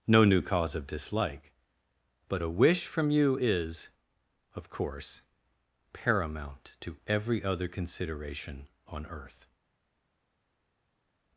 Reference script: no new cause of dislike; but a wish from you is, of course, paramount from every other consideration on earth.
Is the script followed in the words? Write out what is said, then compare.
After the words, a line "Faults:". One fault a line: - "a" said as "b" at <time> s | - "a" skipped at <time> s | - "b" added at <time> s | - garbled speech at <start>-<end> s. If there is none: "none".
no new cause of dislike; but a wish from you is, of course, paramount to every other consideration on earth.
Faults:
- "from" said as "to" at 6.8 s